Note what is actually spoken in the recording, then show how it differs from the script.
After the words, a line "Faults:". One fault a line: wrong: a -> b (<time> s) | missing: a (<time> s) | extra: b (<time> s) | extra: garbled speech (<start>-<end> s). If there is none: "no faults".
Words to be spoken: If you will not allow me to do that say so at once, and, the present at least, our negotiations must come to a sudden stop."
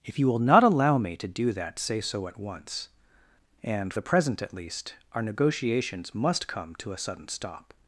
If you will not allow me to do that say so at once, and, the present at least, our negotiations must come to a sudden stop."
Faults:
no faults